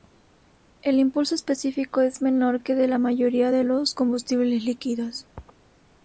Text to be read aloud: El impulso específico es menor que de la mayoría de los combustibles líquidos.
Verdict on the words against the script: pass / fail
pass